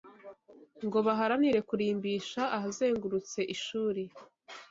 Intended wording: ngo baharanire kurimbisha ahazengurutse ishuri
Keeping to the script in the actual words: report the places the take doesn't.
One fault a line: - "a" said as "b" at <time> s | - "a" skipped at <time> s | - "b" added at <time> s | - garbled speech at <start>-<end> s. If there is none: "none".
none